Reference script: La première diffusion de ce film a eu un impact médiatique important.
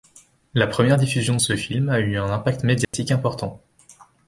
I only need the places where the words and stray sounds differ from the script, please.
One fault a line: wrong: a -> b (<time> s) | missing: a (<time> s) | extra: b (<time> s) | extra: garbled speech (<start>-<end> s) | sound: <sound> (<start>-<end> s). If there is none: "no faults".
sound: dropout (2.8-2.9 s)